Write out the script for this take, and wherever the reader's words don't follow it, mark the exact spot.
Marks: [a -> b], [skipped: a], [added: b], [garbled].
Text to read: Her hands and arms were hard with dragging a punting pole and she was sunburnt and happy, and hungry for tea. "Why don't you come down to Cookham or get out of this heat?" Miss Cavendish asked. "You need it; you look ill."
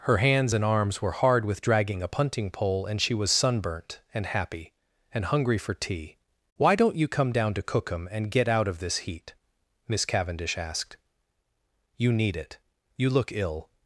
Her hands and arms were hard with dragging a punting pole and she was sunburnt and happy, and hungry for tea. "Why don't you come down to Cookham [or -> and] get out of this heat?" Miss Cavendish asked. "You need it; you look ill."